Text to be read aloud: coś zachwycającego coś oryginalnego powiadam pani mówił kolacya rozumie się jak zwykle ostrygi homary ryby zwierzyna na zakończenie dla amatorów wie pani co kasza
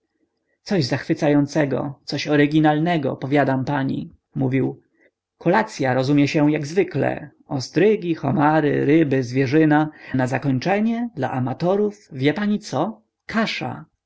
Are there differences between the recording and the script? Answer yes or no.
no